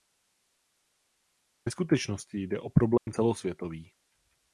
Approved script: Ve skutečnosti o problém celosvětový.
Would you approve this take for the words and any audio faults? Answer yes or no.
no